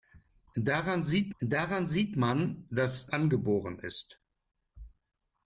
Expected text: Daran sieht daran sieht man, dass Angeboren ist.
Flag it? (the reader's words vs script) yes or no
no